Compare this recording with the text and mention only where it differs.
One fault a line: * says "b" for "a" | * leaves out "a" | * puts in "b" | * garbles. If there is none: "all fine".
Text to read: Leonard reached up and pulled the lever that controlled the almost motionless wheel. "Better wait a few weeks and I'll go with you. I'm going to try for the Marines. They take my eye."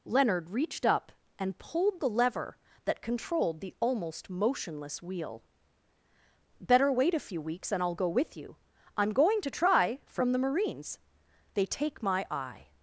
* says "from" for "for"